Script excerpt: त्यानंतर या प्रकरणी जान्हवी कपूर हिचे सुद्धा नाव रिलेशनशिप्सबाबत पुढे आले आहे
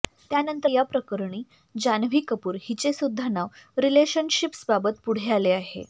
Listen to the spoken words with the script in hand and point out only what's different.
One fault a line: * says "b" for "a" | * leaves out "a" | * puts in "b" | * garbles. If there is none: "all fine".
all fine